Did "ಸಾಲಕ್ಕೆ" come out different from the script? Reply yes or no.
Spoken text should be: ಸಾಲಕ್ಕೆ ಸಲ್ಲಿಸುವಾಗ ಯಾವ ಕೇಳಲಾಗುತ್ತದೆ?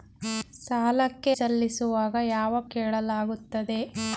no